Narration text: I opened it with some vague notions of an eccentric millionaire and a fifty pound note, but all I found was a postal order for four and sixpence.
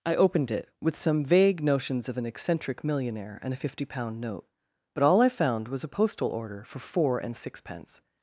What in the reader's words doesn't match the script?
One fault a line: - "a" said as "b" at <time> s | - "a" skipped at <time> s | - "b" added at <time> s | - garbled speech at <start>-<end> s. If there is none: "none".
none